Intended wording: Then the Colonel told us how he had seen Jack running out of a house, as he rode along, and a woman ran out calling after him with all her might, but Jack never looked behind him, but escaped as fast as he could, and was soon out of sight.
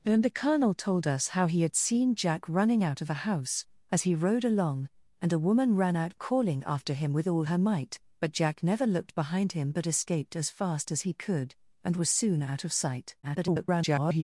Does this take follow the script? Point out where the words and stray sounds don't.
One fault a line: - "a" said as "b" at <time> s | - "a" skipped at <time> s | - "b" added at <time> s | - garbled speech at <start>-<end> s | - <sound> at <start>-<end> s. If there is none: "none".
- garbled speech at 13.2-14.2 s